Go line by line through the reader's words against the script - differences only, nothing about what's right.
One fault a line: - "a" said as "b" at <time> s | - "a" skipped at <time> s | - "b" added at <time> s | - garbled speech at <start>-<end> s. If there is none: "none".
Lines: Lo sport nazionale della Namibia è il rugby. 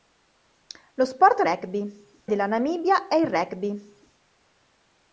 - "nazionale" said as "rugby" at 1.4 s